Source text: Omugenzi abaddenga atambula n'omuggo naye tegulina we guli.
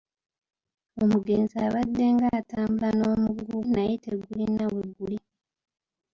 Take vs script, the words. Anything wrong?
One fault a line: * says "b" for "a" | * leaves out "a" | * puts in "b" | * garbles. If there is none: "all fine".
all fine